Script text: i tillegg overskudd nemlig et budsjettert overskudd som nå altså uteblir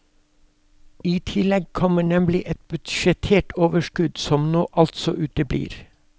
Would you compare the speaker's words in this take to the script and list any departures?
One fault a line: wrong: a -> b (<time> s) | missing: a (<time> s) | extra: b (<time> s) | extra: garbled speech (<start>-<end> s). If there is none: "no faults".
wrong: overskudd -> kommer (1.8 s)